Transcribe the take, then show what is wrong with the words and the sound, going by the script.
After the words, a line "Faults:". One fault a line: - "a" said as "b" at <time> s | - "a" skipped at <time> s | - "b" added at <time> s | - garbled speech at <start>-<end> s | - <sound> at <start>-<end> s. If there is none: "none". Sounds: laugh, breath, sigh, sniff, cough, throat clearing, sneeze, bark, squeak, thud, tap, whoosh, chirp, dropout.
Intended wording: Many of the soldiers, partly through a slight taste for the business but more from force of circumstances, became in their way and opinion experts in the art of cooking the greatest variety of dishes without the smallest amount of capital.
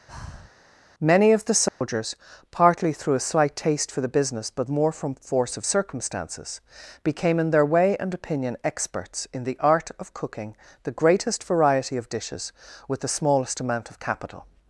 Many of the soldiers, partly through a slight taste for the business but more from force of circumstances, became in their way and opinion experts in the art of cooking the greatest variety of dishes with the smallest amount of capital.
Faults:
- breath at 0.1-0.5 s
- dropout at 1.7-1.8 s
- "without" said as "with" at 12.9 s